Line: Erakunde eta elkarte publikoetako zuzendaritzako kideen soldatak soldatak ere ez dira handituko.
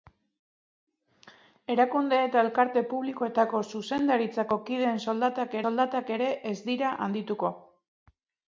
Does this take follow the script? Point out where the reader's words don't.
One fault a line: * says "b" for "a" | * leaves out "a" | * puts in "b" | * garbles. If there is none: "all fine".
all fine